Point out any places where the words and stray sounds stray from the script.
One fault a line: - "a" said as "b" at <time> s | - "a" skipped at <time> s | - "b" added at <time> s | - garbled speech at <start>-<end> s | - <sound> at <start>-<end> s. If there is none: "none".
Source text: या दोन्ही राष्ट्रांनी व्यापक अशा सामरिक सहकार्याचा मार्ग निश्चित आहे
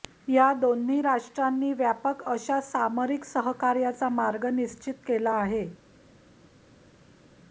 - "केला" added at 5.1 s